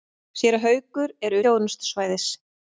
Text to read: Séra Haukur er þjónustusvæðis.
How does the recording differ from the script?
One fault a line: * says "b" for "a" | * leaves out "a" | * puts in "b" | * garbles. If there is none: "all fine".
all fine